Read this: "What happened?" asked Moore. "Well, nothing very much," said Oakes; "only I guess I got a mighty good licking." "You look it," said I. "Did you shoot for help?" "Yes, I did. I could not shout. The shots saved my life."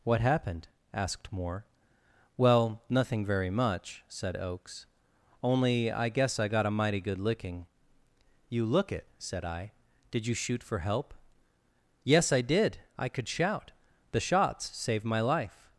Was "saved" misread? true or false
false